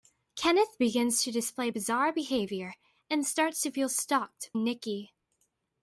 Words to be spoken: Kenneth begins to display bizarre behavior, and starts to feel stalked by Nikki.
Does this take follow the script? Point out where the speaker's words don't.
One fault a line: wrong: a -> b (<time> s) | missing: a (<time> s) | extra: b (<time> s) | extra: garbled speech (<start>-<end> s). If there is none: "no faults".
missing: by (4.5 s)